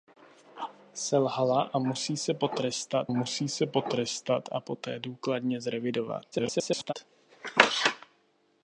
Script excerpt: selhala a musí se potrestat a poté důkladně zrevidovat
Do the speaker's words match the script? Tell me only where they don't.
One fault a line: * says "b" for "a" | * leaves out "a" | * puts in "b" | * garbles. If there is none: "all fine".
* puts in "musí se potrestat"
* garbles